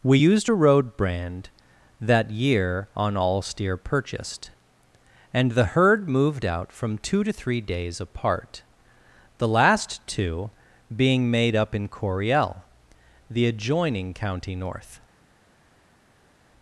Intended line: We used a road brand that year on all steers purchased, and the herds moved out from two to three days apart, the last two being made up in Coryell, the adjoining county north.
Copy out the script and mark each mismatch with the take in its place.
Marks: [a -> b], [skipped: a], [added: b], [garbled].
We used a road brand that year on all [steers -> steer] purchased, and the [herds -> herd] moved out from two to three days apart, the last two being made up in Coryell, the adjoining county north.